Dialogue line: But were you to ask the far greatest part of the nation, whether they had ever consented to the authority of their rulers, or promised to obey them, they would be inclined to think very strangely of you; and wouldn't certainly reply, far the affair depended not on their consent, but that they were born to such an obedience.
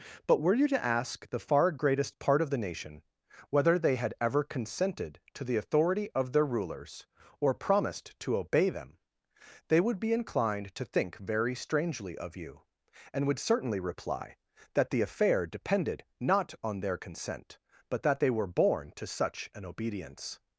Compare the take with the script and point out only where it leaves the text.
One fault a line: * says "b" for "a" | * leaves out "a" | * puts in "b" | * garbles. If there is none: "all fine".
* says "would" for "wouldn't"
* says "that" for "far"